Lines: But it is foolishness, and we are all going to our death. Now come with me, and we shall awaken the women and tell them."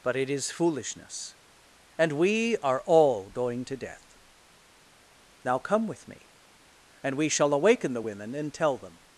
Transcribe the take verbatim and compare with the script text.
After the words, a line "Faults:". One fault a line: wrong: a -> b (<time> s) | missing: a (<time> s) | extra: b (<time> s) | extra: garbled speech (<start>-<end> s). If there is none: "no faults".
But it is foolishness, and we are all going to death. Now come with me, and we shall awaken the women and tell them."
Faults:
missing: our (3.8 s)